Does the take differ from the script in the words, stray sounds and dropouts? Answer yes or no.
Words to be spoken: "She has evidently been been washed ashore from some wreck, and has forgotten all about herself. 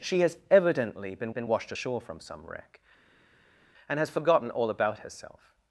no